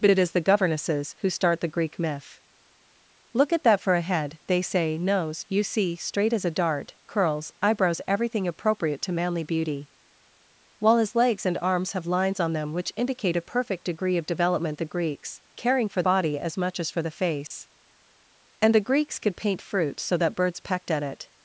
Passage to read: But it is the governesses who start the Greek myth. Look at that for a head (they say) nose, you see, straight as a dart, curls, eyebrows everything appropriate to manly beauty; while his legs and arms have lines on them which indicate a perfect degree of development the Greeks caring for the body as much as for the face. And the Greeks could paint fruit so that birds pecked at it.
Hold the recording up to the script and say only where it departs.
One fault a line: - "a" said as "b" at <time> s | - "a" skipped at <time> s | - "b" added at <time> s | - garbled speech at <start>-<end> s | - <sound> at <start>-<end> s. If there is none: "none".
- "the" skipped at 16.0 s
- dropout at 17.5-17.5 s